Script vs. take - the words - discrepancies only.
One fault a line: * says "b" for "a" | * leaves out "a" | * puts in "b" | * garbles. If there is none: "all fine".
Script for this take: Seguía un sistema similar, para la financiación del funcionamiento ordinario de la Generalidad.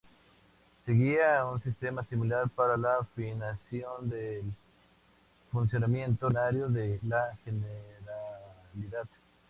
all fine